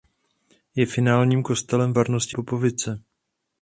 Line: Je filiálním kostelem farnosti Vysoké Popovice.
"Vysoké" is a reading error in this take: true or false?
true